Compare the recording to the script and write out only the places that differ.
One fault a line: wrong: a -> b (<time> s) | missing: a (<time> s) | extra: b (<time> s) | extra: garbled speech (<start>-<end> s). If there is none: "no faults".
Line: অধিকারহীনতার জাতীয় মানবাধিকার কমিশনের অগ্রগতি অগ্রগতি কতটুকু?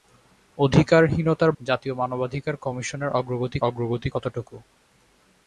no faults